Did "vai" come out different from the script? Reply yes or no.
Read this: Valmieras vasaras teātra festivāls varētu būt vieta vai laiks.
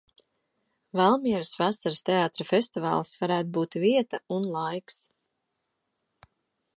yes